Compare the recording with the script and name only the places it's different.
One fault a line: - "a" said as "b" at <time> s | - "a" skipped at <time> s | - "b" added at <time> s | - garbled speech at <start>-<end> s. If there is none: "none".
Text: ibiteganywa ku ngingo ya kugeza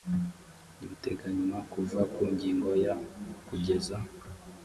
- "kuva" added at 1.7 s